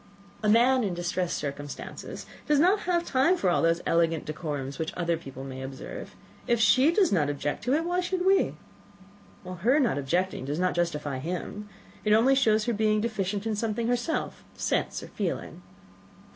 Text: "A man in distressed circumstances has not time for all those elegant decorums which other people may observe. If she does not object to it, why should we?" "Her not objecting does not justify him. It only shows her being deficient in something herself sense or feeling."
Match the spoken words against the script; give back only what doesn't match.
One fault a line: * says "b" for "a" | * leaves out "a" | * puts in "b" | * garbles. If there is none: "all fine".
all fine